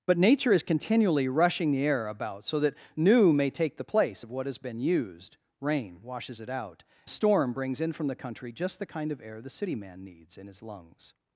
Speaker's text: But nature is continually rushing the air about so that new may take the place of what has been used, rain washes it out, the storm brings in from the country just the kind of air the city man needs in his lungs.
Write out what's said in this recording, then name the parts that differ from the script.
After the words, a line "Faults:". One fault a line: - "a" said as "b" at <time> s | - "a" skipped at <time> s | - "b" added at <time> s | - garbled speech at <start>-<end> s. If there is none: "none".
But nature is continually rushing the air about so that new may take the place of what has been used, rain washes it out, the storm brings in from the country just the kind of air the city man needs in his lungs.
Faults:
none